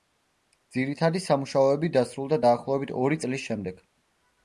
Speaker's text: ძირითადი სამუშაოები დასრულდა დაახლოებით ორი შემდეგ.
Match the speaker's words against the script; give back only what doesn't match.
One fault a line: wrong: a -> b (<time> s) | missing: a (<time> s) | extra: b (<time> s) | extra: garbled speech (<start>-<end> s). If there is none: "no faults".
extra: წლის (3.3 s)